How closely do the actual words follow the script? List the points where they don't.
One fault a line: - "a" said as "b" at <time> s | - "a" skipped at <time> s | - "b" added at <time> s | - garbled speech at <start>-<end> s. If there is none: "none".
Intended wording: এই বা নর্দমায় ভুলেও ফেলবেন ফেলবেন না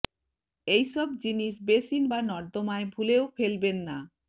- "সব জিনিস বেসিন" added at 0.9 s
- "ফেলবেন" skipped at 3.8 s